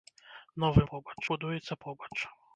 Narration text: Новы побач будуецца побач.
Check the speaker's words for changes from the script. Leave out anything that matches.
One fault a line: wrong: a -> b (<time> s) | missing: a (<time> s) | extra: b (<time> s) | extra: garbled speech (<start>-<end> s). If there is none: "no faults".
no faults